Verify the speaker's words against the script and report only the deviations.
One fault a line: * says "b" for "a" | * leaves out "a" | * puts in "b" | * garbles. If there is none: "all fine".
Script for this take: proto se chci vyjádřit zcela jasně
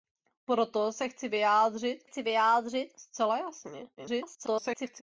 * puts in "chci vyjádřit"
* garbles